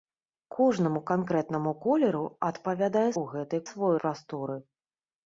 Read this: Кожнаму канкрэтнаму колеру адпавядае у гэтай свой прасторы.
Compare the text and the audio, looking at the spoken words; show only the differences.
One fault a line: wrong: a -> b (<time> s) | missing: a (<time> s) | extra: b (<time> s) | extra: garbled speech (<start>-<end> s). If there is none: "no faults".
no faults